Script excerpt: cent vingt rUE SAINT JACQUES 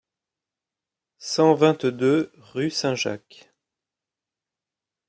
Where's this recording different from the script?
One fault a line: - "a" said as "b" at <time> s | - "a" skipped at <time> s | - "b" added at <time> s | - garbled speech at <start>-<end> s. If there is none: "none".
- "deux" added at 1.8 s